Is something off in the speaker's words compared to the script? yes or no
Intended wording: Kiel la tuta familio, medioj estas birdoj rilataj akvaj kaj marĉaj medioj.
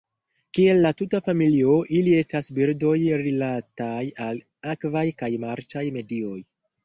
yes